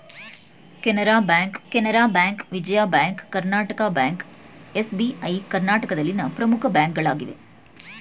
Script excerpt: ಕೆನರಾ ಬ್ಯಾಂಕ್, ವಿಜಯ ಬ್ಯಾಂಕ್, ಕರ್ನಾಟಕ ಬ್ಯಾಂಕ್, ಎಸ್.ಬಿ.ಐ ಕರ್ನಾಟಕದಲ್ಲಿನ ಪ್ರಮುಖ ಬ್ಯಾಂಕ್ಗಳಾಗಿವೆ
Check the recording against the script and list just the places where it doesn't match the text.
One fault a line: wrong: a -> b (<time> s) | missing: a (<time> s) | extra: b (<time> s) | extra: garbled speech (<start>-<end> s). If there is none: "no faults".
extra: ಕೆನರಾ ಬ್ಯಾಂಕ್ (1.7 s)